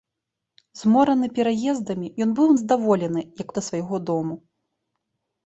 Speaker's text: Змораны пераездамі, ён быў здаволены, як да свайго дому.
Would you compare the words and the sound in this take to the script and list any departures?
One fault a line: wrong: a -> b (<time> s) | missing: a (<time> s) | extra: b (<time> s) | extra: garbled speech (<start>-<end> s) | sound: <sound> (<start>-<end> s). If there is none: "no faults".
no faults